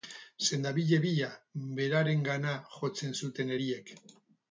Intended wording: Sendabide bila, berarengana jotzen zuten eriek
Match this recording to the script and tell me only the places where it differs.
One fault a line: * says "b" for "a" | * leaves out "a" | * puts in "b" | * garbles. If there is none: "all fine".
all fine